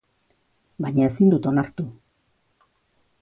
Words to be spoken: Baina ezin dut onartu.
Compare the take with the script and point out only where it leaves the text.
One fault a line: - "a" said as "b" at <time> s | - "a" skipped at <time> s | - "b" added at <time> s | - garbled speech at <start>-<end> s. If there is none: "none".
none